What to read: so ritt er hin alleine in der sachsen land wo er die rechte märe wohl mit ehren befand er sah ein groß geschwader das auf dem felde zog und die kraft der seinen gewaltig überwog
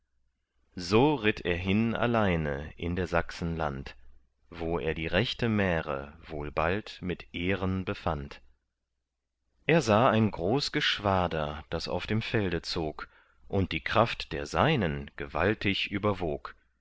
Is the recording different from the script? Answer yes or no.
yes